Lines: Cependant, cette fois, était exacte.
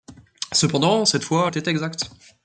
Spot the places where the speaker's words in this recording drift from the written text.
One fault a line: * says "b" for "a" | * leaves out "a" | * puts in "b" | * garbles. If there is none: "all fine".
all fine